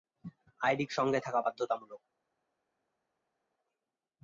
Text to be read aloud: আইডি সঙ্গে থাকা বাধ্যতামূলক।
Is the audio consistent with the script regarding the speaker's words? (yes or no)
yes